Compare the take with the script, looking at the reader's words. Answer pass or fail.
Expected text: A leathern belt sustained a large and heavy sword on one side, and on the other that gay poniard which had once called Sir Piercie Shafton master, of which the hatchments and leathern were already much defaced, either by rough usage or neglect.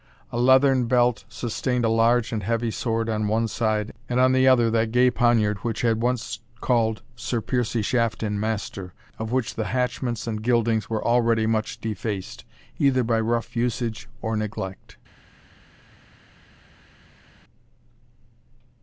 fail